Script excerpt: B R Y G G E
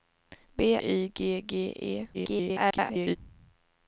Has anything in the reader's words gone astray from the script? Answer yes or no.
yes